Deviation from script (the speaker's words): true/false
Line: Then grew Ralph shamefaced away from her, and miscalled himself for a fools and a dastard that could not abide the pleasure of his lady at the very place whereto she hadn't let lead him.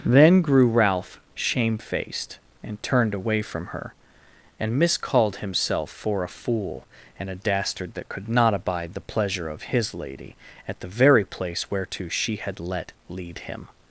true